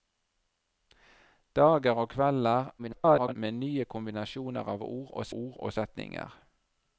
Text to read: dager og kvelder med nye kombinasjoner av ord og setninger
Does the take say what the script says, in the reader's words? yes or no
no